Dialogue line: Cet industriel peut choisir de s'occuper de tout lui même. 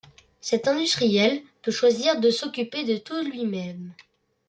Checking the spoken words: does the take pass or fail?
pass